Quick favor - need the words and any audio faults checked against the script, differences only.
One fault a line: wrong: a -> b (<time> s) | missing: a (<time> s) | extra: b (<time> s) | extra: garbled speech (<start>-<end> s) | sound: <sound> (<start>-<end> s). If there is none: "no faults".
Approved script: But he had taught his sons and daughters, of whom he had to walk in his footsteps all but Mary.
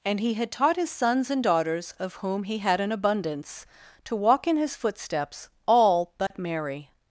wrong: But -> And (0.0 s)
extra: an abundance (2.8 s)
sound: dropout (6.3-6.3 s)